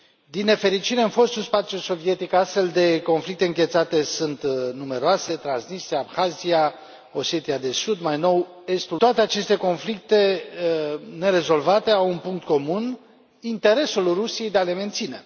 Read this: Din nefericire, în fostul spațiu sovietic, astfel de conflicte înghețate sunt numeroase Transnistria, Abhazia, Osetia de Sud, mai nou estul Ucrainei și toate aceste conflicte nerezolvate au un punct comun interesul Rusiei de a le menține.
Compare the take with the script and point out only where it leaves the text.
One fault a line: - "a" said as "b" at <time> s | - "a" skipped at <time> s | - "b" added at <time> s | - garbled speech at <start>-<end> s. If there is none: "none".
- "Ucrainei și" skipped at 9.0 s